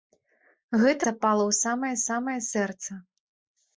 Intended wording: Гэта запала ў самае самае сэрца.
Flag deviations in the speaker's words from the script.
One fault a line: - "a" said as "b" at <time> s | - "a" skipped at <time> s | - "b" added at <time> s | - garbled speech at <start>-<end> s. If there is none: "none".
none